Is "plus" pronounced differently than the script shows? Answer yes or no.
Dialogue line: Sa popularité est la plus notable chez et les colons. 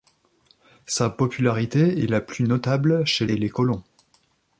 no